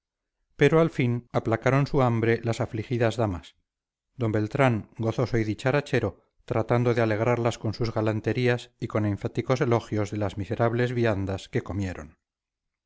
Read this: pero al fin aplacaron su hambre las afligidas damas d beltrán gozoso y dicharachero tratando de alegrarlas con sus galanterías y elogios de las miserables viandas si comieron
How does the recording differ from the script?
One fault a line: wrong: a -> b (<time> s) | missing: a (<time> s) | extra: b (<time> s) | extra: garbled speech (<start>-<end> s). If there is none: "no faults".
extra: con enfáticos (8.9 s)
wrong: si -> que (11.5 s)